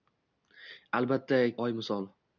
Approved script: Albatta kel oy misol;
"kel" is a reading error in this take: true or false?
true